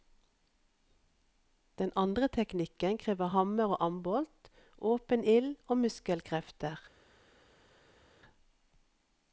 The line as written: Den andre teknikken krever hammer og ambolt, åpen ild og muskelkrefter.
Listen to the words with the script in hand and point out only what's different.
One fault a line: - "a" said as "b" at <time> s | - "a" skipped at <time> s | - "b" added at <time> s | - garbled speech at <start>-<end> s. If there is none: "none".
none